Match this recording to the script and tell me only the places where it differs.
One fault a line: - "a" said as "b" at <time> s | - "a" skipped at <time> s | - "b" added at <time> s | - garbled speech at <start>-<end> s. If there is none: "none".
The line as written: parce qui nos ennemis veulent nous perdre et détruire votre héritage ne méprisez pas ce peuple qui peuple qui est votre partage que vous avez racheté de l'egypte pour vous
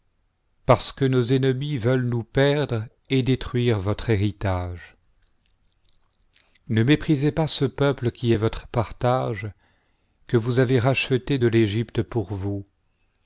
- "qui" said as "que" at 0.9 s
- "peuple qui" skipped at 8.3 s